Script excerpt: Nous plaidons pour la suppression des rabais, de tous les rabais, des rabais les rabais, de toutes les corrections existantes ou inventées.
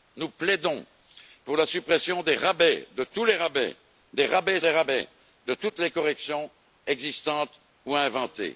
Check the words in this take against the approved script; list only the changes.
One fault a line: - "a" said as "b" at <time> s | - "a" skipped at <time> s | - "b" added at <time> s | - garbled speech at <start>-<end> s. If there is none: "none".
none